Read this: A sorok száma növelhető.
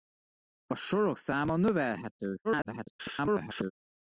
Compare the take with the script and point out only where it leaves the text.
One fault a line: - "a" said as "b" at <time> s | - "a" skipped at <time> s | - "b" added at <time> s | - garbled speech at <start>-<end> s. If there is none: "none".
- garbled speech at 2.4-3.7 s